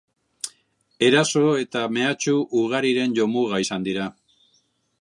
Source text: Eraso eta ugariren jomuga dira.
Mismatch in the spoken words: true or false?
true